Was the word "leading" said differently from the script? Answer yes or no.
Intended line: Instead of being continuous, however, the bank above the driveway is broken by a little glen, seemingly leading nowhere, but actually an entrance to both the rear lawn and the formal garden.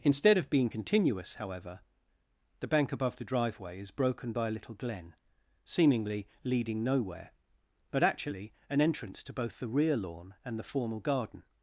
no